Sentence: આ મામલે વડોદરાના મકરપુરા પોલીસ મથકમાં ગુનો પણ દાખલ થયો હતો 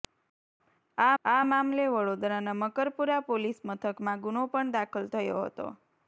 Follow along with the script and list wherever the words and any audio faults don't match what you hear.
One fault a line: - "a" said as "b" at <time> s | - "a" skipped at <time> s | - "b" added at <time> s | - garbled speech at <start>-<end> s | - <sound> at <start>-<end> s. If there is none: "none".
- "આ" added at 1.2 s